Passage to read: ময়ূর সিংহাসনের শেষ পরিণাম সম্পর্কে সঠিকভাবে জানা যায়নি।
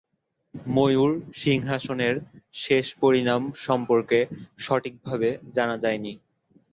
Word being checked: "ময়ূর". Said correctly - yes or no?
yes